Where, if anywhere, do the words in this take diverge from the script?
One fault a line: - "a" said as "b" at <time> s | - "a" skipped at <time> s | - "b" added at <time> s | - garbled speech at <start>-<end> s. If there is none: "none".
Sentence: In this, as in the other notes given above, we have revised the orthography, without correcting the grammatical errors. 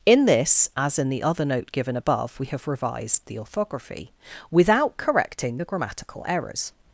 - "notes" said as "note" at 1.4 s